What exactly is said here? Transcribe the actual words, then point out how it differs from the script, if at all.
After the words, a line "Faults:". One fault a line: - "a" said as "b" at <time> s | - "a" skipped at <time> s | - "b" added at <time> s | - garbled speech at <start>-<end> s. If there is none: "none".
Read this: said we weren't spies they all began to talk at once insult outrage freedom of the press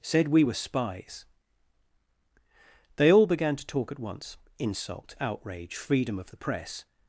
said we were spies they all began to talk at once insult outrage freedom of the press
Faults:
- "weren't" said as "were" at 0.4 s